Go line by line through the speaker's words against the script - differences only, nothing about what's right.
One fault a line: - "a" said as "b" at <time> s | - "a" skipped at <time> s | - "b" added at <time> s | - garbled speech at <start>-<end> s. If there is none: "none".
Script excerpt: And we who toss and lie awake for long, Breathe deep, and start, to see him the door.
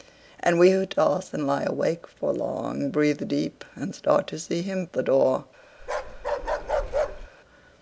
none